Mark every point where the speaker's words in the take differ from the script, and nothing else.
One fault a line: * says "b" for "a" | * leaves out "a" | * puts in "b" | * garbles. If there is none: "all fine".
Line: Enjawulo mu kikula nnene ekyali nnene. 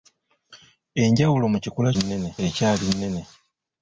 all fine